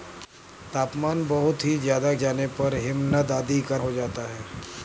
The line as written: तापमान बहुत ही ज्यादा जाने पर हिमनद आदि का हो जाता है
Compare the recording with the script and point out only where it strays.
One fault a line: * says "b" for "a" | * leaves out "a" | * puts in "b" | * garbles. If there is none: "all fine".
all fine